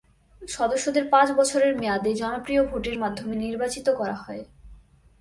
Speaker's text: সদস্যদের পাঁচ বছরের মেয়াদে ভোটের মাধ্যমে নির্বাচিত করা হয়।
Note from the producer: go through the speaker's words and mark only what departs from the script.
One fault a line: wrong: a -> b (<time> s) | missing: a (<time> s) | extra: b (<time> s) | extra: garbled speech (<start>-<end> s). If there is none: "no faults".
extra: জনপ্রিয় (2.1 s)